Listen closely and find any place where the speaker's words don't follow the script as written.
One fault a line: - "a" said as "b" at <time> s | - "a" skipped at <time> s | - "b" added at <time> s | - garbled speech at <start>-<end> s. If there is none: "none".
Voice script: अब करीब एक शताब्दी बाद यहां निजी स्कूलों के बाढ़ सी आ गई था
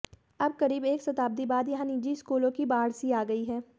- "के" said as "की" at 2.5 s
- "था" said as "है" at 3.5 s